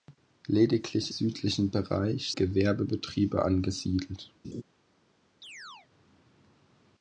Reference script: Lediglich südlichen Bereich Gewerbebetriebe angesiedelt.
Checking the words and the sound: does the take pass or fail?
fail